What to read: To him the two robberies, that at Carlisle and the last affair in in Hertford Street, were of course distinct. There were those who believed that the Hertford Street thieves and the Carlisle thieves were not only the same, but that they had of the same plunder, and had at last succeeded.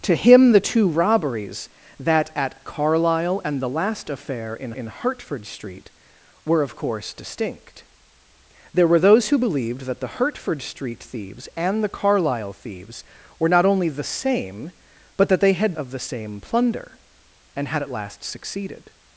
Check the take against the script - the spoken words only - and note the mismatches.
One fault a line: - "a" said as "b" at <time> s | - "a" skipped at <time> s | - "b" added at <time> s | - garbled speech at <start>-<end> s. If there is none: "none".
none